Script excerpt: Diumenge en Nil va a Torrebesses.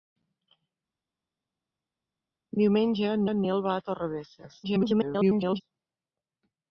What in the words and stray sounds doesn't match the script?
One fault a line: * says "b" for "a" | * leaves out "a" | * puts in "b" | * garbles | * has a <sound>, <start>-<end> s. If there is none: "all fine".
* puts in "en"
* garbles